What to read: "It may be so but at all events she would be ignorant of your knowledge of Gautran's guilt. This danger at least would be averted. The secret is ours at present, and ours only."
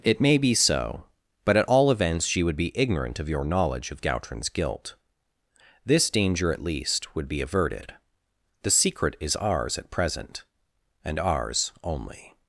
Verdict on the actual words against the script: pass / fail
pass